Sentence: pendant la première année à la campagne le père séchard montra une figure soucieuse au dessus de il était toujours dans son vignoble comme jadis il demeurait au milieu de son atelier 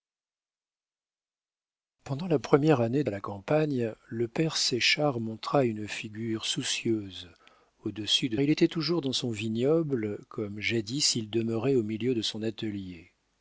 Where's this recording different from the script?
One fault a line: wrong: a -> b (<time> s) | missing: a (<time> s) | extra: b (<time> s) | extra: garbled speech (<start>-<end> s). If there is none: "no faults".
no faults